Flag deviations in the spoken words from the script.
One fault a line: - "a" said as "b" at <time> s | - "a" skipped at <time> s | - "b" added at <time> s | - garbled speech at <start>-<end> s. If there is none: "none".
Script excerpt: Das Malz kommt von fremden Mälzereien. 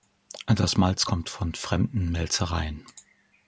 none